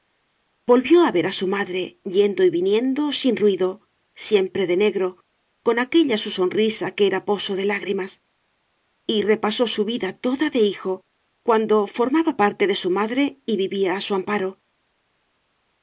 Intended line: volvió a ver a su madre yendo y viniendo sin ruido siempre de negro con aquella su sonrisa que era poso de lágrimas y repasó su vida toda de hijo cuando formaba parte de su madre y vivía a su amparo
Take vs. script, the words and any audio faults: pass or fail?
pass